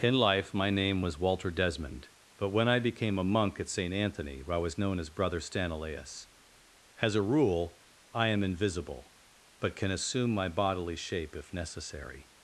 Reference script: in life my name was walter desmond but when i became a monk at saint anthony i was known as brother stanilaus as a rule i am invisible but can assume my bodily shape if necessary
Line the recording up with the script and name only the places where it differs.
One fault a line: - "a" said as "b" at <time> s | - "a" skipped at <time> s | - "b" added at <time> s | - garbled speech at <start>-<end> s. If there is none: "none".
none